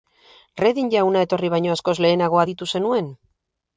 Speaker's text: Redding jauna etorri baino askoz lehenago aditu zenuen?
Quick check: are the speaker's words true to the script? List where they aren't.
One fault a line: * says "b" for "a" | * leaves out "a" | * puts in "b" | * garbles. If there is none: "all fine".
all fine